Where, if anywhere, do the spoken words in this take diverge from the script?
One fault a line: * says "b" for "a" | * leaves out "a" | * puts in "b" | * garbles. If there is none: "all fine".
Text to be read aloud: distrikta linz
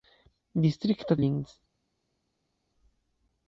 all fine